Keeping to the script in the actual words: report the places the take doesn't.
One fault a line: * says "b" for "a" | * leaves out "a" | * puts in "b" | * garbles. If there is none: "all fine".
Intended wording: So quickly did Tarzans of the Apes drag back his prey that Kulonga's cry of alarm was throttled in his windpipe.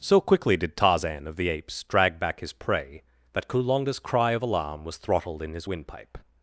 * says "Tarzan" for "Tarzans"